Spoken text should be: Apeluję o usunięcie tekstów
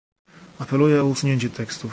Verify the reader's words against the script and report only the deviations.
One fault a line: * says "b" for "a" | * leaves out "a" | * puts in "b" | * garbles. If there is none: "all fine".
all fine